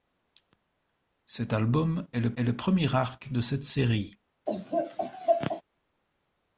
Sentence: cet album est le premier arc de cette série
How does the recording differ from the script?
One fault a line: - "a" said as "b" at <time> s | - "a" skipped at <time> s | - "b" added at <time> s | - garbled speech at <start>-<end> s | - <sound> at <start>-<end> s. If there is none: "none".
- "est le" added at 2.3 s
- laugh at 4.5-5.6 s